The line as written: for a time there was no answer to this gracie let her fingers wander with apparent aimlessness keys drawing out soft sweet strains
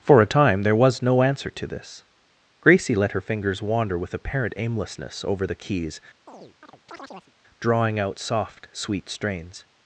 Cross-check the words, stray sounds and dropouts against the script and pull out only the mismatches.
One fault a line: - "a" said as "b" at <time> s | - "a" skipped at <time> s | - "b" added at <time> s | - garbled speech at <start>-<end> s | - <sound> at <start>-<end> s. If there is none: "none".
- "over the" added at 5.3 s
- chirp at 6.3-7.3 s